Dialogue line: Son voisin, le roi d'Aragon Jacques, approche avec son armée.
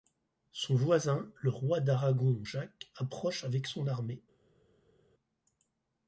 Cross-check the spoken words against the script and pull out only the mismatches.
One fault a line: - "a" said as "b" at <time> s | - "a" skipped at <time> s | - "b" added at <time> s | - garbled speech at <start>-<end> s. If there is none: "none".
none